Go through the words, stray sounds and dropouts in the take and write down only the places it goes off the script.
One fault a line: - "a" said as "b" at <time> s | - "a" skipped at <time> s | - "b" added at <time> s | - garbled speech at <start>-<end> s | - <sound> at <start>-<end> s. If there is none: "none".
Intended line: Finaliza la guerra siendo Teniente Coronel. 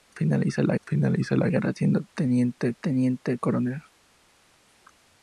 - "finaliza la" added at 0.9 s
- "Teniente" added at 2.8 s